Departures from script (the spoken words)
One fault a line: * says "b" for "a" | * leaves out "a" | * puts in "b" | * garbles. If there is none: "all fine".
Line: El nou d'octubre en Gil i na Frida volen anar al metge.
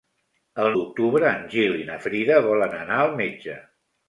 * leaves out "nou"